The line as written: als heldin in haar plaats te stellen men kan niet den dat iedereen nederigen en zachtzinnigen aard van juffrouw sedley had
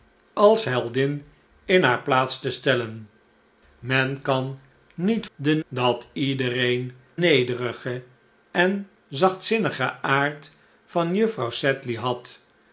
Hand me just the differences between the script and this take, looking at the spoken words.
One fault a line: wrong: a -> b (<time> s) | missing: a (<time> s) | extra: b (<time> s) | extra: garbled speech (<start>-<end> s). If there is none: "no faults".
no faults